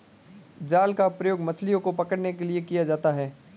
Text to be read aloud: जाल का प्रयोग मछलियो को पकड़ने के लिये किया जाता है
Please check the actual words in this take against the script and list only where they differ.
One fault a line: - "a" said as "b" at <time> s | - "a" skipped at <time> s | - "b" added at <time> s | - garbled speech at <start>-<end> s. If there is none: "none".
none